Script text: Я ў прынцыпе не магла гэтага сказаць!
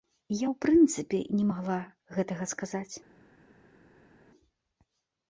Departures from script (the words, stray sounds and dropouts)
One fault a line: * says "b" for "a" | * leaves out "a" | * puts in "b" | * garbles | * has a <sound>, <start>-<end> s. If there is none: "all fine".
all fine